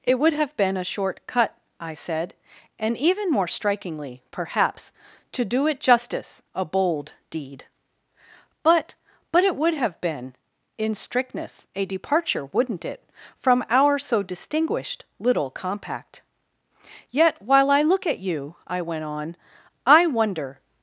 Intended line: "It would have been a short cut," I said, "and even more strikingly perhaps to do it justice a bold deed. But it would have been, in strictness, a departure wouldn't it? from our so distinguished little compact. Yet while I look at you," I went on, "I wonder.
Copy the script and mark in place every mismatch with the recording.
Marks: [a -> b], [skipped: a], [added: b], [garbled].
"It would have been a short cut," I said, "and even more strikingly perhaps to do it justice a bold deed. But [added: But] it would have been, in strictness, a departure wouldn't it? from our so distinguished little compact. Yet while I look at you," I went on, "I wonder.